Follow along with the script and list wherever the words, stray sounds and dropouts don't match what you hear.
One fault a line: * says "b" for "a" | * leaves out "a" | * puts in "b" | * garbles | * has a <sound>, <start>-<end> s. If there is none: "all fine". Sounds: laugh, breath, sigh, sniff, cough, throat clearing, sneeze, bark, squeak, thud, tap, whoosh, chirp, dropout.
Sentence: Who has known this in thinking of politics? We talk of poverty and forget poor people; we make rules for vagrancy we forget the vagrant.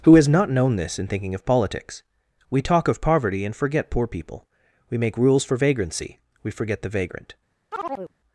* puts in "not"
* has a chirp, 7.7-8.1 s